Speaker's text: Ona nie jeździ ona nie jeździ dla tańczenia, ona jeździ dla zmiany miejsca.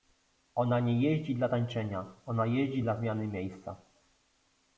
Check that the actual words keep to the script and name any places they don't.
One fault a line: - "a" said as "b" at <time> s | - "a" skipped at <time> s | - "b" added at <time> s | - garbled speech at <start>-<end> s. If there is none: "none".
- "ona nie jeździ" skipped at 1.4 s